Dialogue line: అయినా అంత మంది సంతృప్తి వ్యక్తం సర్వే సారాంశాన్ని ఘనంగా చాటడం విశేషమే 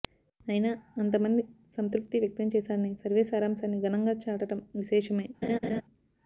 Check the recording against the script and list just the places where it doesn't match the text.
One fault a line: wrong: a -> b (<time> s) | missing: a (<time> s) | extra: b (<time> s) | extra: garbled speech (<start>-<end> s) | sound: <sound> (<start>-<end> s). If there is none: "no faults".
extra: చేశారని (2.5 s)
sound: laugh (5.4-5.8 s)